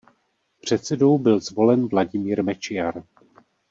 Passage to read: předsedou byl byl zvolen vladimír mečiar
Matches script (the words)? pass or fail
fail